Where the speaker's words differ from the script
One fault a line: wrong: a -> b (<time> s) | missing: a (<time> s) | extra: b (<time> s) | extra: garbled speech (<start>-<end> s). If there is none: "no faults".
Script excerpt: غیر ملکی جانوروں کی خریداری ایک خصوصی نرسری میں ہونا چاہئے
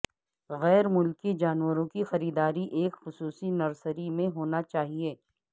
no faults